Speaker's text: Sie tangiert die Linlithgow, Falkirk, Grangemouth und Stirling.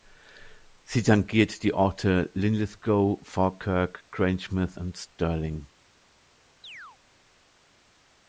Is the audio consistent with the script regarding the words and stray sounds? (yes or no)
no